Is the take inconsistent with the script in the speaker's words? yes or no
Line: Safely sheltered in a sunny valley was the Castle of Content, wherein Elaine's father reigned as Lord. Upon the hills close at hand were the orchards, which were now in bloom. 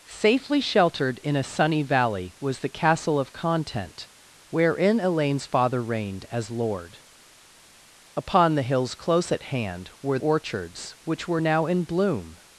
yes